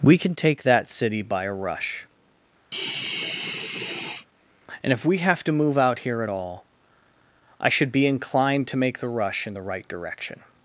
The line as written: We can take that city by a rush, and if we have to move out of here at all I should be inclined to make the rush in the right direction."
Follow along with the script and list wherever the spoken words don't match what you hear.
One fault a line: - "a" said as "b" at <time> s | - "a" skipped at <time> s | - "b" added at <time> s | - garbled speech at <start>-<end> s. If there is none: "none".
- "of" skipped at 6.0 s